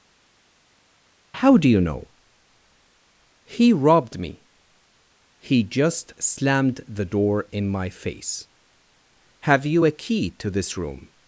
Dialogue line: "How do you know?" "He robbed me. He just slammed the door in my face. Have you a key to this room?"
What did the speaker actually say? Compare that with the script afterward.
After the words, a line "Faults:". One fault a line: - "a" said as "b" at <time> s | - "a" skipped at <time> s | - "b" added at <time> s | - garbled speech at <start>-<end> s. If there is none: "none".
"How do you know?" "He robbed me. He just slammed the door in my face. Have you a key to this room?"
Faults:
none